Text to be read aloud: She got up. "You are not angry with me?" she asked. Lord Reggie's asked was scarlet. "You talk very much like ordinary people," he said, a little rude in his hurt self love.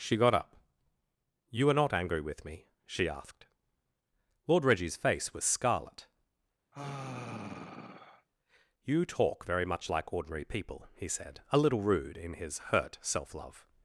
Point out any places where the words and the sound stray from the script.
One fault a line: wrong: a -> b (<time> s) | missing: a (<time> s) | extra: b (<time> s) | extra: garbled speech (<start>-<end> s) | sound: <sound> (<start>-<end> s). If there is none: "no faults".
wrong: asked -> face (5.0 s)
sound: sigh (6.7-8.3 s)